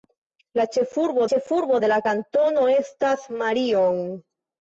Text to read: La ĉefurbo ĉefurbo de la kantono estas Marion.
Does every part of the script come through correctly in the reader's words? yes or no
yes